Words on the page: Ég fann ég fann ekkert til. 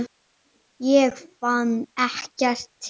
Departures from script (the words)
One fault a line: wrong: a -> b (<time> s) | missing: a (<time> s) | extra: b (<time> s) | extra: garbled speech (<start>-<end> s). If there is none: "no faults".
missing: ég fann (1.7 s)